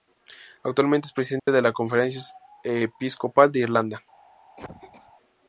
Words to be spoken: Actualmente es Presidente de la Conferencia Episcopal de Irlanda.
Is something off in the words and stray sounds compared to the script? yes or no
yes